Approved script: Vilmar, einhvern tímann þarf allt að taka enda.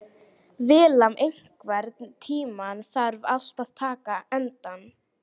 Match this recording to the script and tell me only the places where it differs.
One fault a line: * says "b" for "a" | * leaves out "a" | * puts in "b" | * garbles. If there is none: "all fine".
all fine